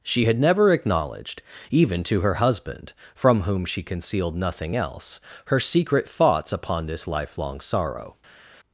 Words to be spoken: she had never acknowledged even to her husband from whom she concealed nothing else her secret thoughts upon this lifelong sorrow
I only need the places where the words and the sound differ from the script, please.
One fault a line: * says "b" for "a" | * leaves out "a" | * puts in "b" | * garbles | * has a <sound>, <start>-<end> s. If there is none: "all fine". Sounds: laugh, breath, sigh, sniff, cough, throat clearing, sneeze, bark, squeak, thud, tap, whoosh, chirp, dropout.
all fine